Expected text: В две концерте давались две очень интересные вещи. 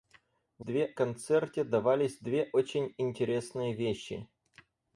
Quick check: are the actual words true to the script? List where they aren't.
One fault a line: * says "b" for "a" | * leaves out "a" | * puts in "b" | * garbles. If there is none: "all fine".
all fine